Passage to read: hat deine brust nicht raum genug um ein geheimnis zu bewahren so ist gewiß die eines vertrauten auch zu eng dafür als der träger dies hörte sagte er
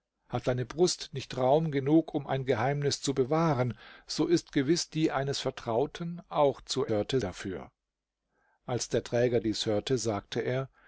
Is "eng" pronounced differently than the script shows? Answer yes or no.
yes